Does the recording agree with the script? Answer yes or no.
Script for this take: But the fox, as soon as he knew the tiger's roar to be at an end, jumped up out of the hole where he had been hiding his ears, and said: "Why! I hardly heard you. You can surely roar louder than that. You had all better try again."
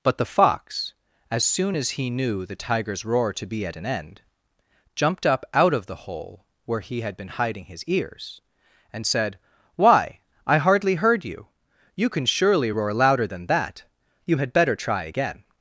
no